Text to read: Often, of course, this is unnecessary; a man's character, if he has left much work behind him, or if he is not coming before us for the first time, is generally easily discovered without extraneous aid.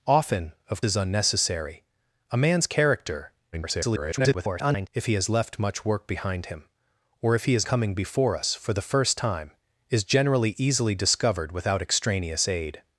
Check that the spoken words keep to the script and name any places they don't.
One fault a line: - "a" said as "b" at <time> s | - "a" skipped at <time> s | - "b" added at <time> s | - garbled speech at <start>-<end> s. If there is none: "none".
- "course this" skipped at 0.8 s
- garbled speech at 3.5-4.9 s
- "not" skipped at 7.7 s